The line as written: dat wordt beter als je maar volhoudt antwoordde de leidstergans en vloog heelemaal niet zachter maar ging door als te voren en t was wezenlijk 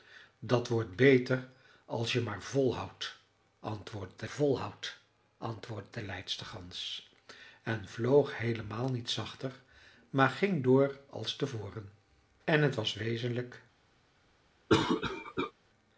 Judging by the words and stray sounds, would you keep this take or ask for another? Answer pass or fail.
fail